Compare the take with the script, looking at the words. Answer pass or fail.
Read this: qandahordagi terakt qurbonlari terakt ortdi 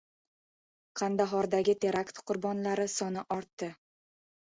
fail